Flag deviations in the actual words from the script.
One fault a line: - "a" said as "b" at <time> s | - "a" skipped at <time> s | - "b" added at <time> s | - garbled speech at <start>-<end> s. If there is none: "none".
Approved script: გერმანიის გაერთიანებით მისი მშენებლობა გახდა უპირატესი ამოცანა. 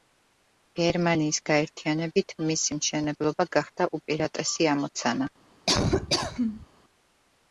none